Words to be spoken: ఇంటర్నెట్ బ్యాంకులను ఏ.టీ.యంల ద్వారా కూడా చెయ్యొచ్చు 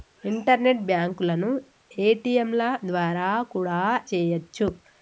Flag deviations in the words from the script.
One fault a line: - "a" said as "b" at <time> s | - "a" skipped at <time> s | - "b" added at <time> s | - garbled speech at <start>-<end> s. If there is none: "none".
none